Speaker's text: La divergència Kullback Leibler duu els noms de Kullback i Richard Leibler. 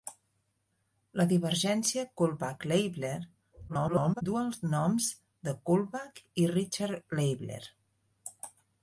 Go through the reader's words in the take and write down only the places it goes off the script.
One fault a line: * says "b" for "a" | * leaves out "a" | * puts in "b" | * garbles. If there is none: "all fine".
* garbles